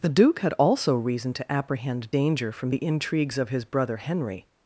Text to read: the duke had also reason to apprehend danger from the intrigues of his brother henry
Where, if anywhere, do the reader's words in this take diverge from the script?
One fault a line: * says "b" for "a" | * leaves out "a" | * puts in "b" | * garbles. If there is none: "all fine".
all fine